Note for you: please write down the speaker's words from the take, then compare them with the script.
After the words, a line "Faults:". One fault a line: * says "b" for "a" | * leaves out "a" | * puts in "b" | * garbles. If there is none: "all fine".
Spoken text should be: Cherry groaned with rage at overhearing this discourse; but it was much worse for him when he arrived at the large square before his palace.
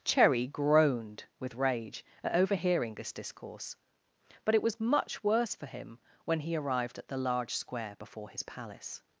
Cherry groaned with rage at overhearing this discourse; but it was much worse for him when he arrived at the large square before his palace.
Faults:
all fine